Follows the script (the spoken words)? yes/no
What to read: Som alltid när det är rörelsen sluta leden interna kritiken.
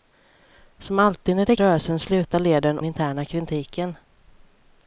yes